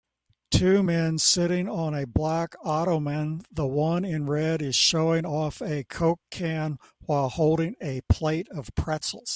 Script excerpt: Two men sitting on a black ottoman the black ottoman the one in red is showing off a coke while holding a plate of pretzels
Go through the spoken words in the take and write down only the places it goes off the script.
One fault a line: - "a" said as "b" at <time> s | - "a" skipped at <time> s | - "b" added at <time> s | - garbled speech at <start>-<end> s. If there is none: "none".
- "black ottoman the" skipped at 3.7 s
- "can" added at 6.3 s